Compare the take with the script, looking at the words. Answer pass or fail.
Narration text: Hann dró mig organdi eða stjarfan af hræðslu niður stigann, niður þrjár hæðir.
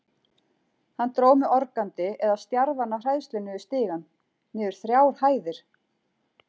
pass